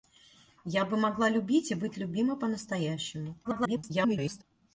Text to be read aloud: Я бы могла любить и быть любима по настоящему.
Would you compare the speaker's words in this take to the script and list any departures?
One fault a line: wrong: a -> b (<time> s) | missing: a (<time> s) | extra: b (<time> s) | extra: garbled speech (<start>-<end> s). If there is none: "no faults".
extra: garbled speech (3.4-4.4 s)